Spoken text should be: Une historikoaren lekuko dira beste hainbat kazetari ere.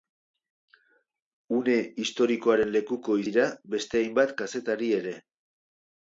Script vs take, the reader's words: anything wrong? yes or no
no